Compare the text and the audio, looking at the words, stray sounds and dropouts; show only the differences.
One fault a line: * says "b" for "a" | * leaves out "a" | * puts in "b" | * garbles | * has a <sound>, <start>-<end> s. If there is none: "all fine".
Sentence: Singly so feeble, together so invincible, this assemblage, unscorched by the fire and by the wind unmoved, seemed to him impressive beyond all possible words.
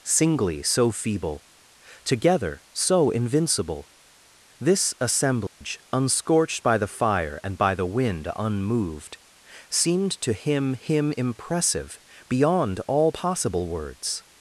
* has a dropout, 5.5-5.6 s
* puts in "him"